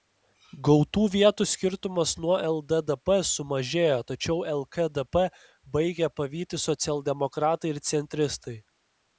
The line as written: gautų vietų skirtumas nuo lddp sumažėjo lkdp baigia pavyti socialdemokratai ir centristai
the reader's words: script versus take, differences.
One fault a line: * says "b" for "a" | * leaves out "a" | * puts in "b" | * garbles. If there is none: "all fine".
* puts in "tačiau"